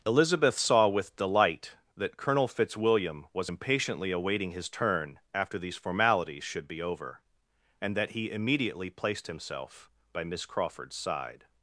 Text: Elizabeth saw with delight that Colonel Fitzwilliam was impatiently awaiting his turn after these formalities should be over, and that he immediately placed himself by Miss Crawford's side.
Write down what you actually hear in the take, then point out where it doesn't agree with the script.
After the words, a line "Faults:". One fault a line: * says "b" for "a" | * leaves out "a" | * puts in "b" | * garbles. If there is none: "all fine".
Elizabeth saw with delight that Colonel Fitzwilliam was impatiently awaiting his turn after these formalities should be over, and that he immediately placed himself by Miss Crawford's side.
Faults:
all fine